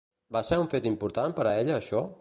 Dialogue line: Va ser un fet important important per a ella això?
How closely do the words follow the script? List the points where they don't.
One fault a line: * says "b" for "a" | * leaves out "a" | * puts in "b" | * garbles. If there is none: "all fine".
* leaves out "important"